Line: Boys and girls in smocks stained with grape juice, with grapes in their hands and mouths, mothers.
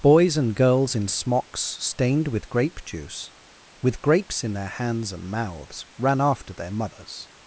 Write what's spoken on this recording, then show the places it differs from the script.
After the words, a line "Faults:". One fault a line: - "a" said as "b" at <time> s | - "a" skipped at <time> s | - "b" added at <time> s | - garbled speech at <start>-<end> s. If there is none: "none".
Boys and girls in smocks stained with grape juice, with grapes in their hands and mouths, ran after their mothers.
Faults:
- "ran after their" added at 6.0 s